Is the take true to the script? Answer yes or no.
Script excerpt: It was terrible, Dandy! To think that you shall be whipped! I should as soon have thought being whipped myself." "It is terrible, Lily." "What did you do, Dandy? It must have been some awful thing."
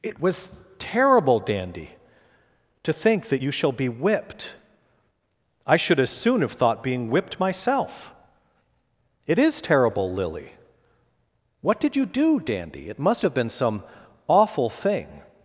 yes